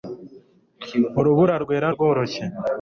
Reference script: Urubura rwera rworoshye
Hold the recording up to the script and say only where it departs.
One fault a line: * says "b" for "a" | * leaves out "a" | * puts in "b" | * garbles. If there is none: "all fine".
all fine